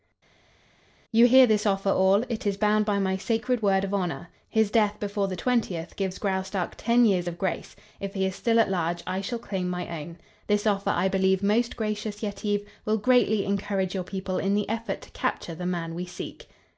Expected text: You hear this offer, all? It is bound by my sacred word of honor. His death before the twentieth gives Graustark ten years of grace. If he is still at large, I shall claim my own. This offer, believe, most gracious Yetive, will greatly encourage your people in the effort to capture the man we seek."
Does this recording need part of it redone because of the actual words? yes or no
yes